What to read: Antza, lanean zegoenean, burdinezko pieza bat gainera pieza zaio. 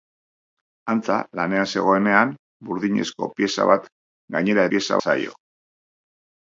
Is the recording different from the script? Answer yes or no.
no